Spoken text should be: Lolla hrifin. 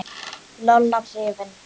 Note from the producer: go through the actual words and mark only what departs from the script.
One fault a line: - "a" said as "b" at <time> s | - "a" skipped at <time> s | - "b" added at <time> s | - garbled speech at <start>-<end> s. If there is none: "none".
none